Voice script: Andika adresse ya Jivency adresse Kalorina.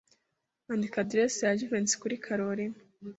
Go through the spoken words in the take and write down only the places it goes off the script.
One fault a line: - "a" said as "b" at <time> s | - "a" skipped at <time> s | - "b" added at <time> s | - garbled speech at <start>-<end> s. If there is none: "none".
- "adresse" said as "kuri" at 2.0 s